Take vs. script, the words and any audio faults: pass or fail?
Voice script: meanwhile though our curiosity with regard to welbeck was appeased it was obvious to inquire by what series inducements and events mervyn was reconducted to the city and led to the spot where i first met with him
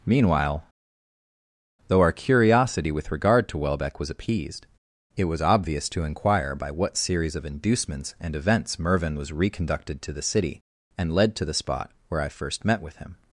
fail